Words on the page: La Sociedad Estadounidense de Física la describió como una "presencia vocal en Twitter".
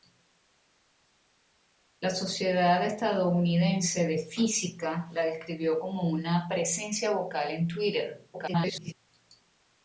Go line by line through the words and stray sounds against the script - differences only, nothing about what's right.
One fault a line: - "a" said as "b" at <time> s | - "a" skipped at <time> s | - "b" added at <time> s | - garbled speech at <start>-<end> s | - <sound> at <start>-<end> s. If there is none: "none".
- garbled speech at 8.3-8.9 s